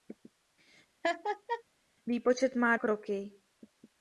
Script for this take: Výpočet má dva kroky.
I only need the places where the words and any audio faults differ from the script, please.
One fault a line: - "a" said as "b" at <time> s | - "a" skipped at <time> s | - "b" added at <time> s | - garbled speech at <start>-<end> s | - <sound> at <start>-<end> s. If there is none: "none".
- laugh at 1.0-1.6 s
- "dva" skipped at 2.8 s